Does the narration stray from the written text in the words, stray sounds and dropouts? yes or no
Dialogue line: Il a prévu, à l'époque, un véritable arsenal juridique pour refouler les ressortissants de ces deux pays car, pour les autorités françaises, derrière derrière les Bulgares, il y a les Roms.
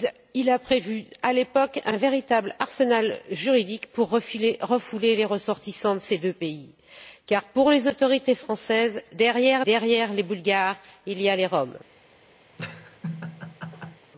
yes